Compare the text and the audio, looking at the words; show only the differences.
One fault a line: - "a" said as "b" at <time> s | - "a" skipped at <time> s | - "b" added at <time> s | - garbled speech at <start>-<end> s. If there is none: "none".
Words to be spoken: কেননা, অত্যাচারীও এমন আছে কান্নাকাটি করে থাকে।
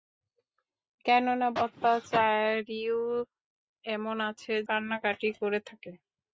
none